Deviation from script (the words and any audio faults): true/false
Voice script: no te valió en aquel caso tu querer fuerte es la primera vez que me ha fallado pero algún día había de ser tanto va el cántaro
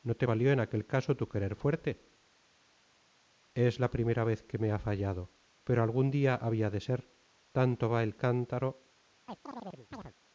true